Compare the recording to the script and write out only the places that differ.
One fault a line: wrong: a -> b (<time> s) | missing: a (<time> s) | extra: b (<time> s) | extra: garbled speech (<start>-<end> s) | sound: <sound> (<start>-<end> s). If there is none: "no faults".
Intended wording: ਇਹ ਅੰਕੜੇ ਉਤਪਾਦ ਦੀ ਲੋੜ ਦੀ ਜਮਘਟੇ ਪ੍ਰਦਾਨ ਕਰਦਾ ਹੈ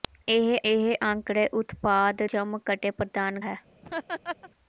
extra: ਇਹ (0.6 s)
missing: ਦੀ ਲੋੜ ਦੀ (2.2 s)
missing: ਕਰਦਾ (3.4 s)
sound: laugh (3.8-4.5 s)